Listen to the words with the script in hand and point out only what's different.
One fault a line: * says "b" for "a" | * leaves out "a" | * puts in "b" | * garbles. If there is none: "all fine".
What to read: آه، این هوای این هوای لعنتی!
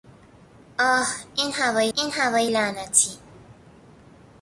all fine